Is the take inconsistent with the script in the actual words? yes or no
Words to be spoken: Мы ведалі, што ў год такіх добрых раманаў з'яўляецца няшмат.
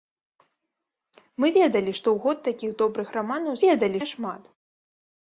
yes